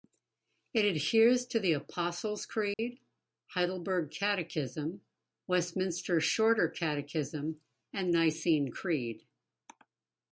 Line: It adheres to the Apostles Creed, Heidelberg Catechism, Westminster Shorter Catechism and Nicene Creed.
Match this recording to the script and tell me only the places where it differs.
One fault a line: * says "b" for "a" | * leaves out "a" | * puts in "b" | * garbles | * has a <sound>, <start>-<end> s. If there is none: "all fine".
* has a dropout, 2.7-2.8 s